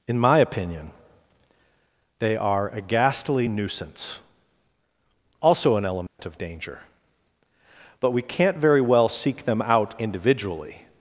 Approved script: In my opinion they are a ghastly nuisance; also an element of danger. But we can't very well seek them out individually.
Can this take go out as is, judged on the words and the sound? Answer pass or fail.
fail